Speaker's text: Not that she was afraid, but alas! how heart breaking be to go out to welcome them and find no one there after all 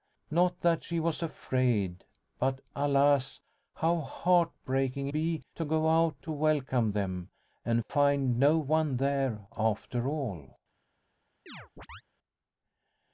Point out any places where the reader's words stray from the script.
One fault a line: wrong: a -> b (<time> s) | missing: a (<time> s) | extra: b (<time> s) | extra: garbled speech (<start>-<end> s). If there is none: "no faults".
no faults